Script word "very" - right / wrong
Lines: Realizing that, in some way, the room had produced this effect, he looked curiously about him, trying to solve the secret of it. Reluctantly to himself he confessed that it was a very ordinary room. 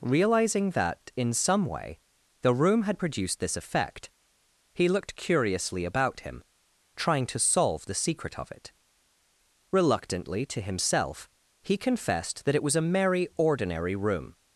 wrong